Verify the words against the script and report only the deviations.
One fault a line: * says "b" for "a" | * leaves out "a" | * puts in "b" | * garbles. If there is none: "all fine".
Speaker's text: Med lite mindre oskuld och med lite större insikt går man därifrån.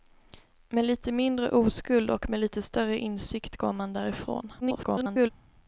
* garbles